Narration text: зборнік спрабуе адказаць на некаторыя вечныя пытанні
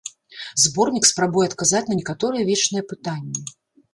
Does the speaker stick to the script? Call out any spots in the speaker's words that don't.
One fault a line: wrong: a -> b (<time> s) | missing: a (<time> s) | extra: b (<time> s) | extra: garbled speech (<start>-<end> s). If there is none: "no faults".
no faults